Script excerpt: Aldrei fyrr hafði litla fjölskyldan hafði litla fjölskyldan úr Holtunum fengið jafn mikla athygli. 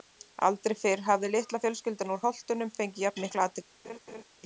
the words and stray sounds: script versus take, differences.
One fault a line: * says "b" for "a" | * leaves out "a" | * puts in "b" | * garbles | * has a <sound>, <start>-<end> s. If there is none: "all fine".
* leaves out "hafði litla fjölskyldan"
* has a laugh, 3.8-4.2 s